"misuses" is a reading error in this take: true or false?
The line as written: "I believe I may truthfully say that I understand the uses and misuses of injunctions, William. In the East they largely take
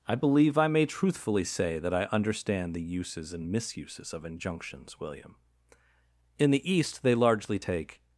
false